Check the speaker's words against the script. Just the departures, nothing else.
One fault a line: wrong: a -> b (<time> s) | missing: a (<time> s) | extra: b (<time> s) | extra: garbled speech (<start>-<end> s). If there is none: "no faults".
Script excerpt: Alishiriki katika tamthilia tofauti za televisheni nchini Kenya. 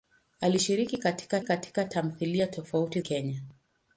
extra: katika (1.4 s)
missing: za televisheni nchini (3.0 s)